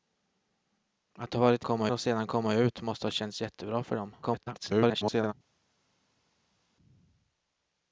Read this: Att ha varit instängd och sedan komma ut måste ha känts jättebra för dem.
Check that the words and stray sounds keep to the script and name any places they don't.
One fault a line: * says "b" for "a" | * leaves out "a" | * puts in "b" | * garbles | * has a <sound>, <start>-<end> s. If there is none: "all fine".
* says "komma" for "instängd"
* garbles